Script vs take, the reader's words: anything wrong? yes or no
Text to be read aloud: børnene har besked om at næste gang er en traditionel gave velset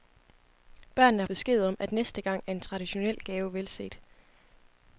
no